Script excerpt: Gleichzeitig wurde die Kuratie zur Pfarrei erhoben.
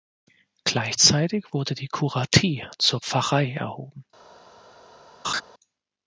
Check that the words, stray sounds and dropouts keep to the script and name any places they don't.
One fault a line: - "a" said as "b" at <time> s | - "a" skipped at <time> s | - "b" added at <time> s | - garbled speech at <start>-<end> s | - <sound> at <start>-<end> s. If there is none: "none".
- laugh at 5.2-5.4 s